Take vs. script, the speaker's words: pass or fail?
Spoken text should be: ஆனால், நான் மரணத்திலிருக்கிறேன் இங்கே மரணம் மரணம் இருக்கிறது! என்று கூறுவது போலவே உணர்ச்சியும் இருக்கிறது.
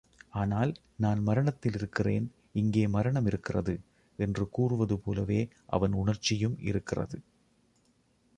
fail